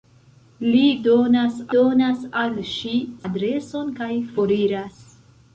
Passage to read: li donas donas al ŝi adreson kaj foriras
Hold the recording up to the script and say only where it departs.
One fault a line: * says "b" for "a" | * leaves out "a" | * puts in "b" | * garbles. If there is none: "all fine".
all fine